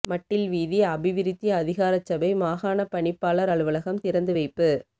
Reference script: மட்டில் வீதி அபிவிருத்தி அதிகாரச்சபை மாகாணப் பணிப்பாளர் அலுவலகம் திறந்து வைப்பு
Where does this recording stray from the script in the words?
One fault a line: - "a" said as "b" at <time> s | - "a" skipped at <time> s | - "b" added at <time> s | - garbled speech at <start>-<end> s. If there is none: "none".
none